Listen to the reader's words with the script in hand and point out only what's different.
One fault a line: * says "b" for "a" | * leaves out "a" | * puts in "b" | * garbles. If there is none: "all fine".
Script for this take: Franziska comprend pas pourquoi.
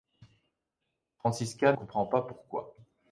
all fine